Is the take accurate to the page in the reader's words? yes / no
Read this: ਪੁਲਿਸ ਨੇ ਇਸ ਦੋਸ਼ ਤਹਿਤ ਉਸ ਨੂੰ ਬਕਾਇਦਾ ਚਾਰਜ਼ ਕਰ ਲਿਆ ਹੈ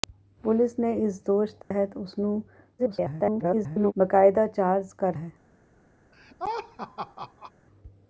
no